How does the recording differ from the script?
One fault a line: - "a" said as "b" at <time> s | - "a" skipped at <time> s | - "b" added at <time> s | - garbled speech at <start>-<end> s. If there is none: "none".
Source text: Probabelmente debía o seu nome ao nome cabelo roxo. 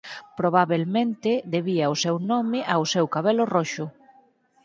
- "nome" said as "seu" at 2.9 s